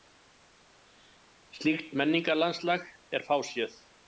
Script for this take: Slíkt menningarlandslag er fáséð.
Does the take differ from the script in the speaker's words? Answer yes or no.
no